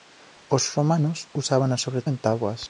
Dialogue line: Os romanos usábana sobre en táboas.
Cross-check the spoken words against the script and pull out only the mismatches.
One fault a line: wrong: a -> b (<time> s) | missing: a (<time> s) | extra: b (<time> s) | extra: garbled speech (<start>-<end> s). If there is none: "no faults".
no faults